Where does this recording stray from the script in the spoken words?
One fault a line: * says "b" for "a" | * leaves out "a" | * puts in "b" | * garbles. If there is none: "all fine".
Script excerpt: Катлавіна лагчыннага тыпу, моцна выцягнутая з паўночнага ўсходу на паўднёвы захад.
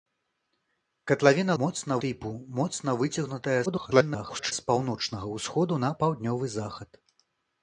* says "моцна" for "лагчыннага"
* garbles